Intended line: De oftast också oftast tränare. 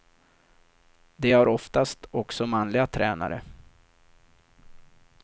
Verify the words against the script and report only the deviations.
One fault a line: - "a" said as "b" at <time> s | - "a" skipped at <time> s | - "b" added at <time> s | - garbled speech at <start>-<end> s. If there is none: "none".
- "har" added at 1.3 s
- "oftast" said as "manliga" at 2.5 s